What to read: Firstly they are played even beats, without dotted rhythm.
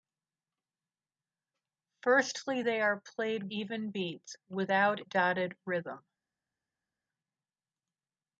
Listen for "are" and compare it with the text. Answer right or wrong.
right